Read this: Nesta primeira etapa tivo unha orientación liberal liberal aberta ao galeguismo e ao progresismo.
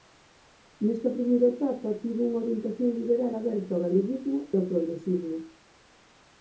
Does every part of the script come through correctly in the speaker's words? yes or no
no